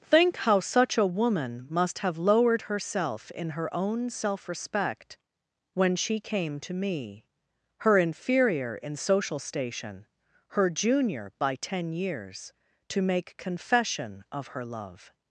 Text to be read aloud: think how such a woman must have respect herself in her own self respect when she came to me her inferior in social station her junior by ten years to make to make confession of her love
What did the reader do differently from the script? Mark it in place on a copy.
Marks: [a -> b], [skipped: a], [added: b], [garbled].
think how such a woman must have [respect -> lowered] herself in her own self respect when she came to me her inferior in social station her junior by ten years to make [skipped: to make] confession of her love